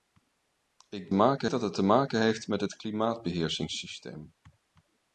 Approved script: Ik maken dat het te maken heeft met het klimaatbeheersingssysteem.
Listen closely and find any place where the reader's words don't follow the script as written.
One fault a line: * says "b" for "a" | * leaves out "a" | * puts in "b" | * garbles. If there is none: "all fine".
all fine